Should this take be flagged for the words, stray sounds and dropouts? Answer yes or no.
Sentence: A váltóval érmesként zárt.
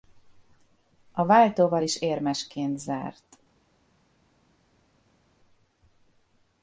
yes